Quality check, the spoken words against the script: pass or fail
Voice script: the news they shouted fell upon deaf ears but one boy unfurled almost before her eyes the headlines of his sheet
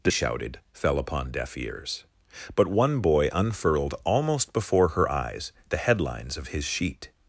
fail